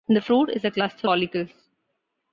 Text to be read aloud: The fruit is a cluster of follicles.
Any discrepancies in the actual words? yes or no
yes